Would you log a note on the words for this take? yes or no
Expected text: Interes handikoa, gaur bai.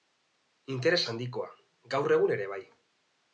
yes